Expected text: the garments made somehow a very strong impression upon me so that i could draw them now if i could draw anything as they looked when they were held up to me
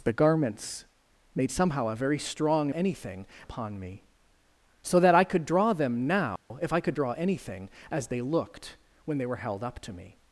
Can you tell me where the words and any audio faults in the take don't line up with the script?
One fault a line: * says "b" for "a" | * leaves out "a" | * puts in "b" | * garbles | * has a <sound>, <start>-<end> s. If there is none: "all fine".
* says "anything" for "impression"
* has a dropout, 6.4-6.5 s